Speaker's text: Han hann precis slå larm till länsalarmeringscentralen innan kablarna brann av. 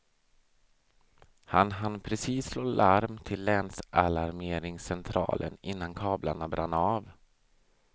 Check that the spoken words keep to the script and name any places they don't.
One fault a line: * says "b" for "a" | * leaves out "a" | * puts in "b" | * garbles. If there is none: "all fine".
all fine